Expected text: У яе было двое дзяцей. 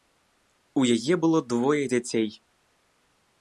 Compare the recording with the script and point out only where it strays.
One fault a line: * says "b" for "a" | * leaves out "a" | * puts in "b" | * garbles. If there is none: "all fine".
all fine